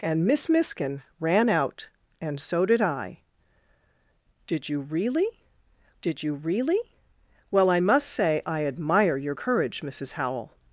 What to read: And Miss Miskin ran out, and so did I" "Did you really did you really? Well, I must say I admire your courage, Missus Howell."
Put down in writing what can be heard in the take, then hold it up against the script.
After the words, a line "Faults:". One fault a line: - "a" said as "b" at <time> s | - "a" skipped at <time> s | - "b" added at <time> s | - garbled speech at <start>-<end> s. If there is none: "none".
And Miss Miskin ran out, and so did I" "Did you really did you really? Well, I must say I admire your courage, Missus Howell."
Faults:
none